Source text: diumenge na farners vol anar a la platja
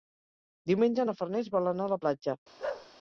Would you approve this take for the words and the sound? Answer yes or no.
no